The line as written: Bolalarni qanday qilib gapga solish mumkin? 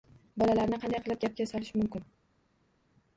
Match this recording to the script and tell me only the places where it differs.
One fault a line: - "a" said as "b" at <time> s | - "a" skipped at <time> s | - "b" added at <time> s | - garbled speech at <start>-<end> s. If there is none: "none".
none